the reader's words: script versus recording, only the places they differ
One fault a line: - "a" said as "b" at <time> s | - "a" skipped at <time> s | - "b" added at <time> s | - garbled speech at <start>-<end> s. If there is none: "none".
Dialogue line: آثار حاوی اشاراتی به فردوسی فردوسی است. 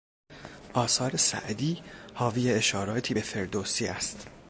- "سعدی" added at 1.2 s
- "فردوسی" skipped at 3.9 s